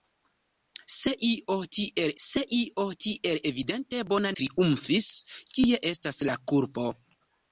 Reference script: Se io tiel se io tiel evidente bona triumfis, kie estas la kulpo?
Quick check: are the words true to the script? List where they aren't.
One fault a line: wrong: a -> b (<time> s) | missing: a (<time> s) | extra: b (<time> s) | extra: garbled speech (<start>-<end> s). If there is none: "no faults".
no faults